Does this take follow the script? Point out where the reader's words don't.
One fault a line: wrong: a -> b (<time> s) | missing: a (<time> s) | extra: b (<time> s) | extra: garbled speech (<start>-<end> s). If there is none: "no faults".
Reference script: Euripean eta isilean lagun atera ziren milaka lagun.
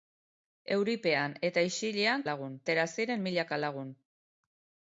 no faults